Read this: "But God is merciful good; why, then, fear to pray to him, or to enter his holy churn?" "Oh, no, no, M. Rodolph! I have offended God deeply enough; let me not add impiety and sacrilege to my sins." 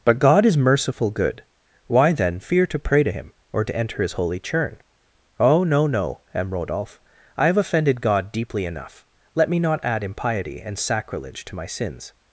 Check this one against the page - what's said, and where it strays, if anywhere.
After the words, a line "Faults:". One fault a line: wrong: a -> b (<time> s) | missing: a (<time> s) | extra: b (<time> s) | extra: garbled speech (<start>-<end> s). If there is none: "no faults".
"But God is merciful good; why, then, fear to pray to him, or to enter his holy churn?" "Oh, no, no, M. Rodolph! I have offended God deeply enough; let me not add impiety and sacrilege to my sins."
Faults:
no faults